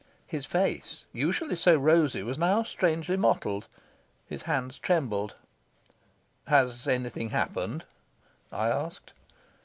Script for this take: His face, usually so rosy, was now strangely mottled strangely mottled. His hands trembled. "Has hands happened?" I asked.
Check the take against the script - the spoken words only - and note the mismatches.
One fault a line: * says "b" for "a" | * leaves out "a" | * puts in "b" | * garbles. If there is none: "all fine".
* leaves out "strangely mottled"
* says "anything" for "hands"